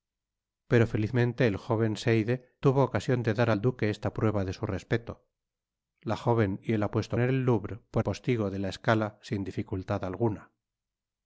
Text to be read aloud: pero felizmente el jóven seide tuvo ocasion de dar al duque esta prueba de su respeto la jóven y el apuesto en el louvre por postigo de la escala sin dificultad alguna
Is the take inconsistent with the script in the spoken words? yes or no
no